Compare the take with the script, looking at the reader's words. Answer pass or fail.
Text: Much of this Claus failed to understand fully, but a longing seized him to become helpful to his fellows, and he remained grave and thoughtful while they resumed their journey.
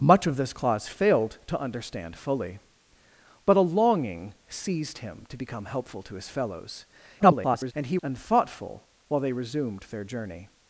fail